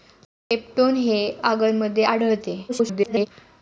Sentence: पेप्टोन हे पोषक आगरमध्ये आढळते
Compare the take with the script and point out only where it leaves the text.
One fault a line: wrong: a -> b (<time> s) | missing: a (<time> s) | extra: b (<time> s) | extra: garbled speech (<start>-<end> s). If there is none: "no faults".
missing: पोषक (1.2 s)
extra: garbled speech (2.7-3.3 s)